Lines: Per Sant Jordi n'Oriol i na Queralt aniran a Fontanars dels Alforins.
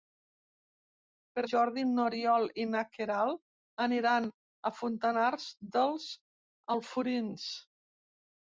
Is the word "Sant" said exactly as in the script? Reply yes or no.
no